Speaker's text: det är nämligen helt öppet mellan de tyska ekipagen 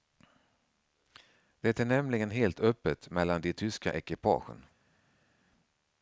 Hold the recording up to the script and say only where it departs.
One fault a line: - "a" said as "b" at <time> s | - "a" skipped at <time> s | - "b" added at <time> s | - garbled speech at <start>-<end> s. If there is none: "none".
none